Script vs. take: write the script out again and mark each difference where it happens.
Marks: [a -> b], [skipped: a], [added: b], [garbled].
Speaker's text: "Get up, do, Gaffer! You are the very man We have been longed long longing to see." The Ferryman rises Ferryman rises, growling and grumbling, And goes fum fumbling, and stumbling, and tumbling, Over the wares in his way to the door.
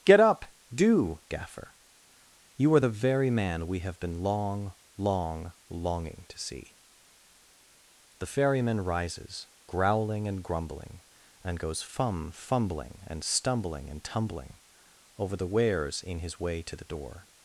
"Get up, do, Gaffer! You are the very man We have been [longed -> long] long longing to see." The Ferryman rises [skipped: Ferryman rises,] growling and grumbling, And goes fum fumbling, and stumbling, and tumbling, Over the wares in his way to the door.